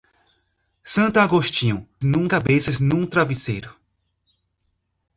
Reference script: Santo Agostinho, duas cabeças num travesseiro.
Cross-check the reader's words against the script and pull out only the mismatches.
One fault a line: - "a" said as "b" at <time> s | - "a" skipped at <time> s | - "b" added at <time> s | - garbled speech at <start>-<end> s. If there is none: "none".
- "duas" said as "num" at 2.0 s